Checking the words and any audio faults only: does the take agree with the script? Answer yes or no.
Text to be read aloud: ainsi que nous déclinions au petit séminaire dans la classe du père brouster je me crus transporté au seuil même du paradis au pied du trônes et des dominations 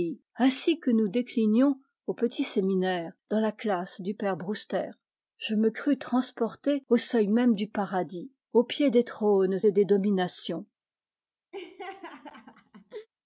no